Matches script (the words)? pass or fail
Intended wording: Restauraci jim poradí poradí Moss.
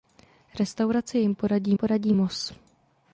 pass